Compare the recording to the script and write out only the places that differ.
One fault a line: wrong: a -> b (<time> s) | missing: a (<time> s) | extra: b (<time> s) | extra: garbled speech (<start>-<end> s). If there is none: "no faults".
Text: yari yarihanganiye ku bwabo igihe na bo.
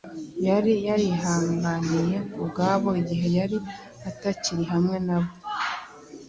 extra: yari atakiri hamwe (3.4 s)